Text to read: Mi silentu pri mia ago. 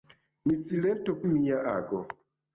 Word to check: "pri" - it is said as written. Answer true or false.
false